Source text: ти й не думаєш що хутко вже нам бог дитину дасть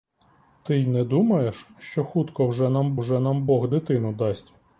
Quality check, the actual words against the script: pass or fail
fail